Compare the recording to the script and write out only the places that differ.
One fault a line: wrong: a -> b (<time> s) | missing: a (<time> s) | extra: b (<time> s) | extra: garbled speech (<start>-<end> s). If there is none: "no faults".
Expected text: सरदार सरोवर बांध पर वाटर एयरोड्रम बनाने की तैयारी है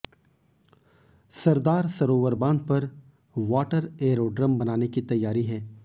no faults